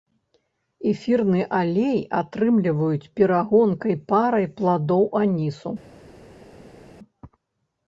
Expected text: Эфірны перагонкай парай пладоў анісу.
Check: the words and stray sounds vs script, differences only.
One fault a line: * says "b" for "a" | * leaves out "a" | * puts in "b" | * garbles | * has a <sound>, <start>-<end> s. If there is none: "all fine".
* puts in "алей атрымліваюць"